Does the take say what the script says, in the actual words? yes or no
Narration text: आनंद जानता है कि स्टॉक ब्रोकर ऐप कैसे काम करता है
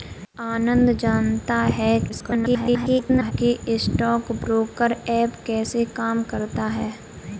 no